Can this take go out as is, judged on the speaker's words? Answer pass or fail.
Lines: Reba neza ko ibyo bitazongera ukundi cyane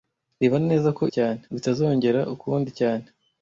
fail